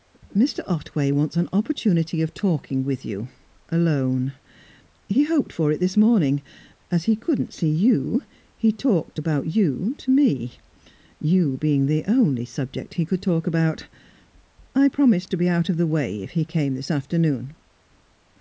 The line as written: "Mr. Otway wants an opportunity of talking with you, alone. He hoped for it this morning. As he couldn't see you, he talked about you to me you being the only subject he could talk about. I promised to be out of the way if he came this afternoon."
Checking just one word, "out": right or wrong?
right